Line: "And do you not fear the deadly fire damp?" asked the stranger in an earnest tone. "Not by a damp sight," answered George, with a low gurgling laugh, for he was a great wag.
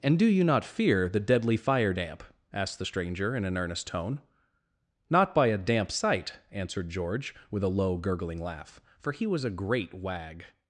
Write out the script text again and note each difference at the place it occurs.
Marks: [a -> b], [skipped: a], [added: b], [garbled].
"And do you not fear the deadly fire damp?" asked the stranger in an earnest tone. "Not by a damp sight," answered George, with a low gurgling laugh, for he was a great wag.